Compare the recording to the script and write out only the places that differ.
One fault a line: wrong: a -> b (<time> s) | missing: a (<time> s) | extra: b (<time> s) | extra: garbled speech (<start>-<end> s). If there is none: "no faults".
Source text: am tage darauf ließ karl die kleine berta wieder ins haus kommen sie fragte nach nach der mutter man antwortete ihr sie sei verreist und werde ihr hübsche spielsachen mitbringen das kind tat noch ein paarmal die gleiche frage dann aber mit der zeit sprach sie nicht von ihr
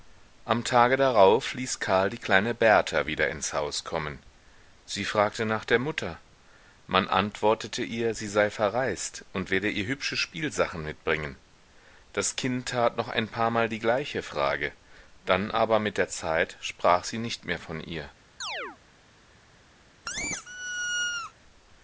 missing: nach (5.6 s)
extra: mehr (17.4 s)